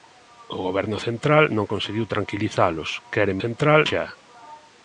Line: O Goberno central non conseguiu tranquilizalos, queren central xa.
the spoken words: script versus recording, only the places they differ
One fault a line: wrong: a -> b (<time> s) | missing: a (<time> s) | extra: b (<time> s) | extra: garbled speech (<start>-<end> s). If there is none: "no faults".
no faults